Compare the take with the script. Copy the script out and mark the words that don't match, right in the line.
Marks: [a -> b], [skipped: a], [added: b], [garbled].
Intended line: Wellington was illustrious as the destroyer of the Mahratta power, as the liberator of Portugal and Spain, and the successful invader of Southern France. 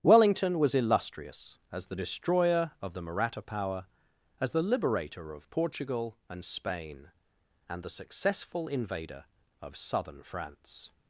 Wellington was illustrious as the destroyer of the Mahratta power, as the liberator of Portugal and Spain, and the successful invader of Southern France.